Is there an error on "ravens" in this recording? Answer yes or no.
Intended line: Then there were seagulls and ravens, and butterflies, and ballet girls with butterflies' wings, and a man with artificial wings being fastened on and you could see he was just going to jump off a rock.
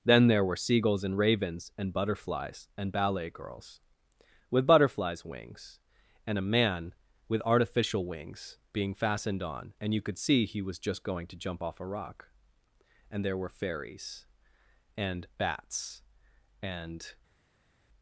no